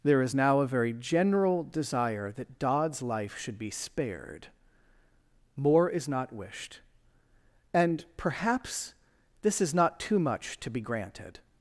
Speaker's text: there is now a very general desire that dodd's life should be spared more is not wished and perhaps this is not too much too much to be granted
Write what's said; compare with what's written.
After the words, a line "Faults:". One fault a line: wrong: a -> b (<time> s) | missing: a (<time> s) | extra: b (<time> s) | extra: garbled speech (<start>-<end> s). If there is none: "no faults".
there is now a very general desire that dodd's life should be spared more is not wished and perhaps this is not too much to be granted
Faults:
missing: too much (10.6 s)